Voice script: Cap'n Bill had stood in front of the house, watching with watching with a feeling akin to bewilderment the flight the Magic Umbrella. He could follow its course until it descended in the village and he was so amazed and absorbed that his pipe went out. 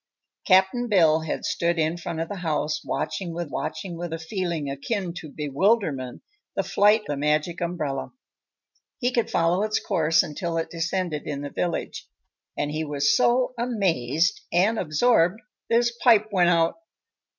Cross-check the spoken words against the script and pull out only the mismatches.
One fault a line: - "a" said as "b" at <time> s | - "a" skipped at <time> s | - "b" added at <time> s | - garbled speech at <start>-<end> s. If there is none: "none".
none